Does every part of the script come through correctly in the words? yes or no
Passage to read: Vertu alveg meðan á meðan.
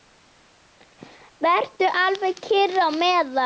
no